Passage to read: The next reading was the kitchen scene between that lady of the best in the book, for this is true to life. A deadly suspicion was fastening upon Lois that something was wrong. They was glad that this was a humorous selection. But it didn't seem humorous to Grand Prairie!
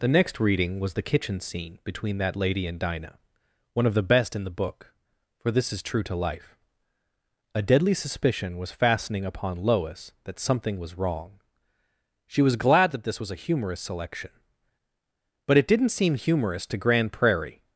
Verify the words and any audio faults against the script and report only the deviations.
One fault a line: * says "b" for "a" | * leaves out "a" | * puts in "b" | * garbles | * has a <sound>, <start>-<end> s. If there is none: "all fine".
* puts in "and Dinah one"
* says "She" for "They"